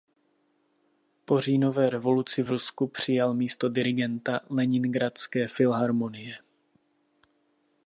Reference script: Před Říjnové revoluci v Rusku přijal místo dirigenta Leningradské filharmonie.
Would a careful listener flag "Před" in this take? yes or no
yes